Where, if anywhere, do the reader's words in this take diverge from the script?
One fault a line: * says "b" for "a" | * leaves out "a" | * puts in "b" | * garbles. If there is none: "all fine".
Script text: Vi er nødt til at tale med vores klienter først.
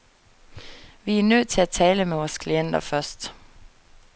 all fine